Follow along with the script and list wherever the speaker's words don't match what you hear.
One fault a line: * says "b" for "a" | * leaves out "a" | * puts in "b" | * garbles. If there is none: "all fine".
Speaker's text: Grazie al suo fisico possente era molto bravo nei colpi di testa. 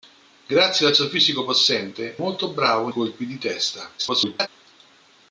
* leaves out "era"
* leaves out "nei"
* garbles